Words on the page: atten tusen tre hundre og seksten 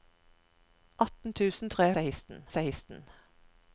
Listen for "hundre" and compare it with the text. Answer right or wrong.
wrong